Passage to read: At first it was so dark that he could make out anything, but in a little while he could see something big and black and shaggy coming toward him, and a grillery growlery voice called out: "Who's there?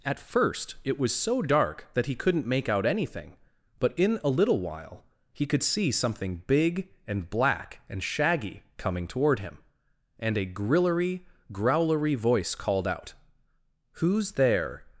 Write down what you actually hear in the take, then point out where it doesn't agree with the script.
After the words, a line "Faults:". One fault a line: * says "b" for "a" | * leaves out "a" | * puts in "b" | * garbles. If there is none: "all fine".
At first it was so dark that he couldn't make out anything, but in a little while he could see something big and black and shaggy coming toward him, and a grillery growlery voice called out: "Who's there?
Faults:
* says "couldn't" for "could"